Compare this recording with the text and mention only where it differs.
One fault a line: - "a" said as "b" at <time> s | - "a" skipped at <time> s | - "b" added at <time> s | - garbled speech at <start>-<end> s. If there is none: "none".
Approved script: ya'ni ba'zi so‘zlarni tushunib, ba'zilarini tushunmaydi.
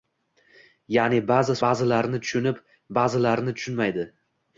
- "so‘zlarni" said as "ba'zilarini" at 1.7 s